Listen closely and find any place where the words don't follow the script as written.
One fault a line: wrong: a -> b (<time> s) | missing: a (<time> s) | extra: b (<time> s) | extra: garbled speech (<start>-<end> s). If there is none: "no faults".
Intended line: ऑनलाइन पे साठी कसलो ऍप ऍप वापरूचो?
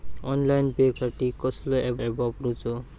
no faults